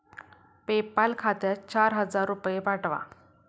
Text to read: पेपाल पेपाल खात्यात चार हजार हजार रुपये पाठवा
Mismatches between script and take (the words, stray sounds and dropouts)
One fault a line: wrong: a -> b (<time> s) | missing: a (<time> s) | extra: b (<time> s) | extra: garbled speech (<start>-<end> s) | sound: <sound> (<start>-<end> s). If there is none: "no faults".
missing: पेपाल (1.1 s)
missing: हजार (2.3 s)